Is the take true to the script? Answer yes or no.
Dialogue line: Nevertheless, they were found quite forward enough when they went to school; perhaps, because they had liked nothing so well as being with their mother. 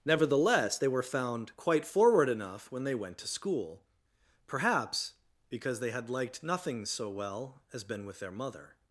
no